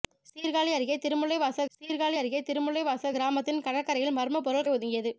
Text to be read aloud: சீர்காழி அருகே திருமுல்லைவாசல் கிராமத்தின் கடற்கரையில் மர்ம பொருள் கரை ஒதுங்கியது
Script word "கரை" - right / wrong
wrong